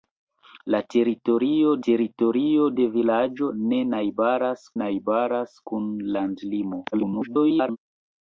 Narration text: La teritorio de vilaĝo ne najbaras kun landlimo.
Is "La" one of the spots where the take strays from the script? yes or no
no